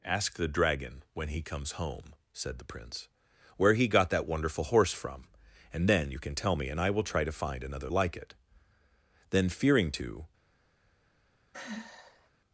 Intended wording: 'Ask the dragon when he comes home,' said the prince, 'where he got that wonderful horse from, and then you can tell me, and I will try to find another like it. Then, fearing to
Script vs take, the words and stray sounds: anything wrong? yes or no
yes